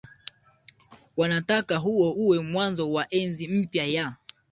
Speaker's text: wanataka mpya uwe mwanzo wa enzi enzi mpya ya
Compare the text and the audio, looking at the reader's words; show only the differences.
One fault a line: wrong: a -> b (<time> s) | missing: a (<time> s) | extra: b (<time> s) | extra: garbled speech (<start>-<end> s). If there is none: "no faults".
wrong: mpya -> huo (1.8 s)
missing: enzi (3.5 s)